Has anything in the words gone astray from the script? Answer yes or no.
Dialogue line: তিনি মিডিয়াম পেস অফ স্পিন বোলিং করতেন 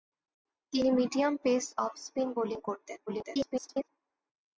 yes